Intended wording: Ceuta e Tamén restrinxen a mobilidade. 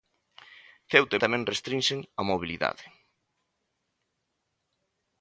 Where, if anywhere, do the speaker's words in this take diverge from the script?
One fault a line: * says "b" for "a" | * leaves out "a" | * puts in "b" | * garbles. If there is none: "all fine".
all fine